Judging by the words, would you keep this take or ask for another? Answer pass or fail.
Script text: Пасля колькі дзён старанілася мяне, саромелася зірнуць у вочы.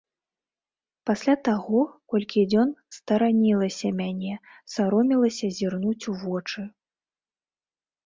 fail